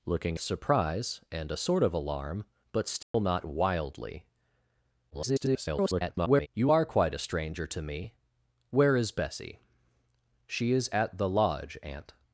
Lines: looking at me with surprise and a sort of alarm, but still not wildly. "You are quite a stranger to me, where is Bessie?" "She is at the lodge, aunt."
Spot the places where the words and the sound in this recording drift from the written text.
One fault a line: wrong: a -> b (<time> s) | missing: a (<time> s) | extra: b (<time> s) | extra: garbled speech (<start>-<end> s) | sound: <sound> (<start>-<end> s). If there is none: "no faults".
missing: at me with (0.4 s)
sound: dropout (3.0-3.1 s)
extra: garbled speech (5.1-6.5 s)